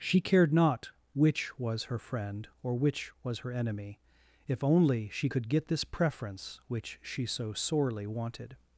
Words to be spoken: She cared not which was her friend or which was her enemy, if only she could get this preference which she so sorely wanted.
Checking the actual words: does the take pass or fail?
pass